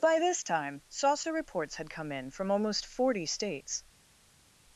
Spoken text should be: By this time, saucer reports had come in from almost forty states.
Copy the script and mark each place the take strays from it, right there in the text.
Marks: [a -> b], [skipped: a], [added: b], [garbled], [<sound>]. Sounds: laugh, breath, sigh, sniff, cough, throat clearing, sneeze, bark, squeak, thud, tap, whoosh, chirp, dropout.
By this time, saucer reports had come in from almost forty states.